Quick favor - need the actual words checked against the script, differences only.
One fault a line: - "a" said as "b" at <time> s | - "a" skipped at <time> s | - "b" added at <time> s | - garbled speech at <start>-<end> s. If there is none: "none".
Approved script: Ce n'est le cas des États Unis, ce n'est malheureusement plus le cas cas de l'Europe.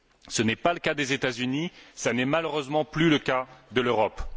- "pas" added at 0.6 s
- "cas" skipped at 3.5 s